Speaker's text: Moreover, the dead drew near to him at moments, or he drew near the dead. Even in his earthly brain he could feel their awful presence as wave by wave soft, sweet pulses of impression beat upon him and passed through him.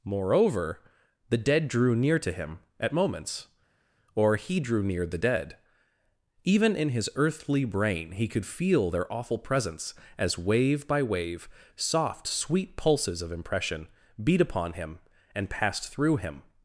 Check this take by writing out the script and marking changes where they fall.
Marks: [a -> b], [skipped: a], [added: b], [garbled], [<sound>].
Moreover, the dead drew near to him at moments, or he drew near the dead. Even in his earthly brain he could feel their awful presence as wave by wave soft, sweet pulses of impression beat upon him and passed through him.